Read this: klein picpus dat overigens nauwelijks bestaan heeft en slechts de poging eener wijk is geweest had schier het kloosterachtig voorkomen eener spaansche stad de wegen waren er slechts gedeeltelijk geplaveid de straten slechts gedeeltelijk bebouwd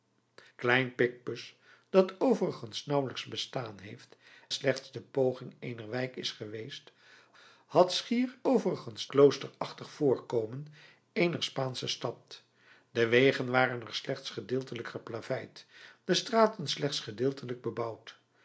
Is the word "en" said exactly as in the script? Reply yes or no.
no